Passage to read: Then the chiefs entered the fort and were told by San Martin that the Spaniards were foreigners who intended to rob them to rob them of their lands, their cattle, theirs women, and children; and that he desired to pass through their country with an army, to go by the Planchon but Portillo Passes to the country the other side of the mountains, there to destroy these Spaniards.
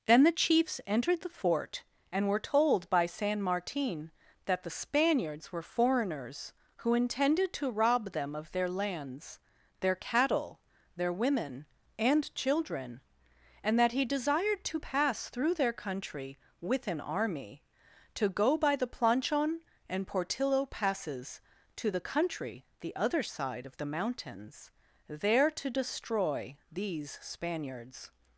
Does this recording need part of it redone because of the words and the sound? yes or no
yes